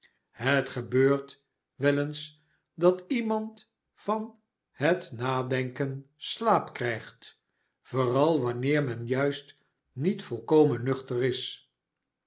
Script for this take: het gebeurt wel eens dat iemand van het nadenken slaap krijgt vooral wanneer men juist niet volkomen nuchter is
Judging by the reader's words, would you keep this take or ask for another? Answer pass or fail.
pass